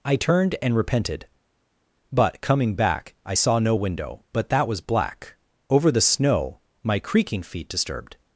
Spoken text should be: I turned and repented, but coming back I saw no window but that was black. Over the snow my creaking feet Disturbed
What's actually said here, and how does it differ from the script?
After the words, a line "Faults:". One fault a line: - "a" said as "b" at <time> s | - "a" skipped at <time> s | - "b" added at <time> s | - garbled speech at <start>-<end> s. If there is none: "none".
I turned and repented, but coming back I saw no window but that was black. Over the snow my creaking feet Disturbed
Faults:
none